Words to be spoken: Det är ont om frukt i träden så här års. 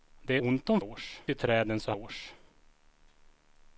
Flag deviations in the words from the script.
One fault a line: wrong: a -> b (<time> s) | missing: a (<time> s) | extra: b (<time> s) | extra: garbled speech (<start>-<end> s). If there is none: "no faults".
missing: är (0.4 s)
wrong: frukt -> års (0.8 s)
missing: här (1.9 s)